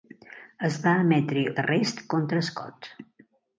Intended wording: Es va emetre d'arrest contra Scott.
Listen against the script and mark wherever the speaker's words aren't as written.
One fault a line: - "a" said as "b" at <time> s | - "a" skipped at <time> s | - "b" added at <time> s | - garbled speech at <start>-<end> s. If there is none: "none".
none